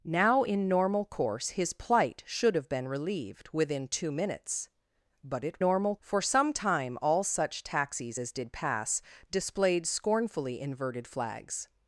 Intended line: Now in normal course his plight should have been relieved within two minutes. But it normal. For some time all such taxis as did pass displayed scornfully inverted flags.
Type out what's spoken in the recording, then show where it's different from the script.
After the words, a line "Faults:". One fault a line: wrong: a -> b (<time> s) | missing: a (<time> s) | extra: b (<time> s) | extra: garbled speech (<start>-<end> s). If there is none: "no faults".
Now in normal course his plight should have been relieved within two minutes. But it normal. For some time all such taxis as did pass displayed scornfully inverted flags.
Faults:
no faults